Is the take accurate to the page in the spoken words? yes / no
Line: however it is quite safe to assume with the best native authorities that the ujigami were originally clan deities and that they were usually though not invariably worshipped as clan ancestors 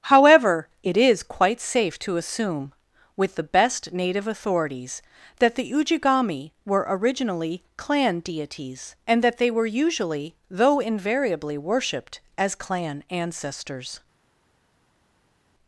no